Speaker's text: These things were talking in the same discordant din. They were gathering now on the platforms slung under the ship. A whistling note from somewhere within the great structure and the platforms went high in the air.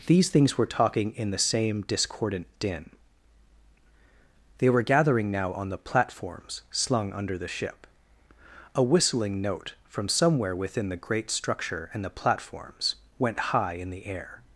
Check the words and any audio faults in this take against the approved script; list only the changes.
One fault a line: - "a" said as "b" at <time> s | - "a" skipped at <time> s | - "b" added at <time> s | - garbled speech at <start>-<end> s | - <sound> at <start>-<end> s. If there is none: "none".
none